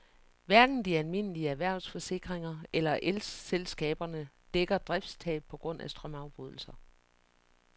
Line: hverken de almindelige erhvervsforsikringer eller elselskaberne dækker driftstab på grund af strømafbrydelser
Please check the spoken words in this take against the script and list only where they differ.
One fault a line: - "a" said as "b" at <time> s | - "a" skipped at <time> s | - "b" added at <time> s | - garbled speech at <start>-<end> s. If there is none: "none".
none